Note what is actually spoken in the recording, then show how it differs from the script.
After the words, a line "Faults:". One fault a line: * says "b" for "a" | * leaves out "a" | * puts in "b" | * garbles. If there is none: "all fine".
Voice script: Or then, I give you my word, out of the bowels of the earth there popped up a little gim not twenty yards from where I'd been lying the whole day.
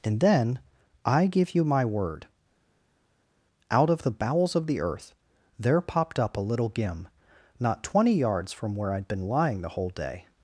And then, I give you my word, out of the bowels of the earth there popped up a little gim not twenty yards from where I'd been lying the whole day.
Faults:
* says "And" for "Or"